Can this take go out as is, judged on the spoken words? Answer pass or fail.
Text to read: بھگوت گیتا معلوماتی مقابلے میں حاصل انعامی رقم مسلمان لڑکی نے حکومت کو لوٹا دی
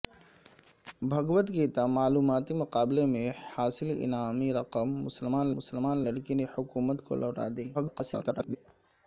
fail